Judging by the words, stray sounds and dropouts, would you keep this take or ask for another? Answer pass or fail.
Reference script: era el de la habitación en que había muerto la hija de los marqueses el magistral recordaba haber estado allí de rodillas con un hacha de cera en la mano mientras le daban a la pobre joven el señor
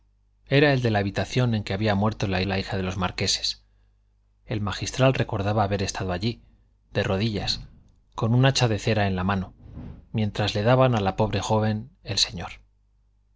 fail